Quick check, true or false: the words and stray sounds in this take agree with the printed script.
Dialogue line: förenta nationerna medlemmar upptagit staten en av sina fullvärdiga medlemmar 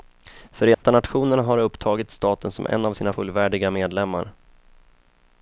false